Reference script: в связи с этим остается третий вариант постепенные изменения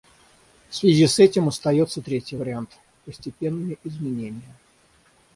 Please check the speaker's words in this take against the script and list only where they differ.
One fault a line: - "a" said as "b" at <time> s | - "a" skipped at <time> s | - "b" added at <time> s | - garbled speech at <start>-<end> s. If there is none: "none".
none